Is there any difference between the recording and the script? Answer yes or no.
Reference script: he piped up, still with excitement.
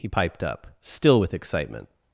no